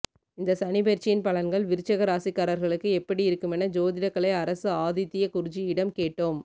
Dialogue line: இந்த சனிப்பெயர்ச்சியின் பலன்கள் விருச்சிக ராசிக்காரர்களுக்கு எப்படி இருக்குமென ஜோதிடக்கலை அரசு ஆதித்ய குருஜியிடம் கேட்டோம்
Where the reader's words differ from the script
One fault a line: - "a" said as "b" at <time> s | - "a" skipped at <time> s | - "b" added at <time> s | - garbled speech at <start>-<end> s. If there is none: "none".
none